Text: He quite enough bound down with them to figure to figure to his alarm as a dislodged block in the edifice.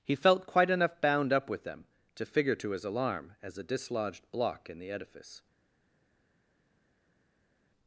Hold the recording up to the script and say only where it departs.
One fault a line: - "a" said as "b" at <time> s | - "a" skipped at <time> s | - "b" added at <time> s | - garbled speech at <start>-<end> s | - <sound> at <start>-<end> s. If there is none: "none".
- "felt" added at 0.1 s
- "down" said as "up" at 1.3 s
- "figure to" skipped at 2.7 s